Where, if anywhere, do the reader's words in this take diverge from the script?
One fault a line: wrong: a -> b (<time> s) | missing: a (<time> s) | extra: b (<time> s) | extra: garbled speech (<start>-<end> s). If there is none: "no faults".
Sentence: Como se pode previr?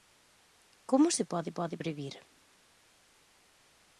extra: pode (1.6 s)